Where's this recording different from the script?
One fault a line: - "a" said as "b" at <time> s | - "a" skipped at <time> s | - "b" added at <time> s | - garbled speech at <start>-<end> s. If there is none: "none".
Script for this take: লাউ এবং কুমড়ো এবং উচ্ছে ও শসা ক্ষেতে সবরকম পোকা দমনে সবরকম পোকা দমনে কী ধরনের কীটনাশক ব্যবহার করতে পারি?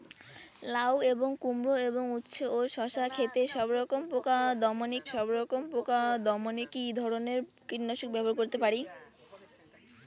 none